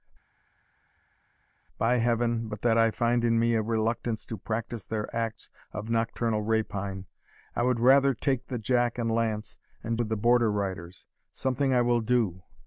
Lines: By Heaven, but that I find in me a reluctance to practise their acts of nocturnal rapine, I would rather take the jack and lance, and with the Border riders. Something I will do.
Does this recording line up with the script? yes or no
yes